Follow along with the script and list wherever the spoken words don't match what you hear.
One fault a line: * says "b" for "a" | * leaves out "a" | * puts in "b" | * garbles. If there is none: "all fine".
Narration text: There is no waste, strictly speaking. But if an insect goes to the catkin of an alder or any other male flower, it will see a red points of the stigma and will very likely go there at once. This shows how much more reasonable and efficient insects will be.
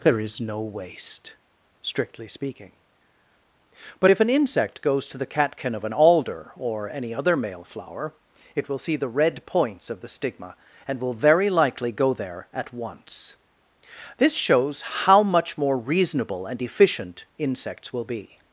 * says "the" for "a"